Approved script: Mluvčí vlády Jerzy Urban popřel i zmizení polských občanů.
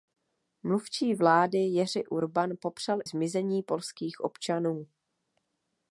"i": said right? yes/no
no